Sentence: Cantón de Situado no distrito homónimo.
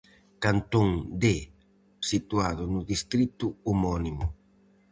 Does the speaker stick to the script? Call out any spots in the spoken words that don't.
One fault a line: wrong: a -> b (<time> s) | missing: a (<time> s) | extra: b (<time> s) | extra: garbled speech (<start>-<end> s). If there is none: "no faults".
no faults